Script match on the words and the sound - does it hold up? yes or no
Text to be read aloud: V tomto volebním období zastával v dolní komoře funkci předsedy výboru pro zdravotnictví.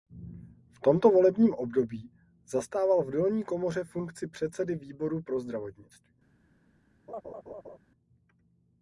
no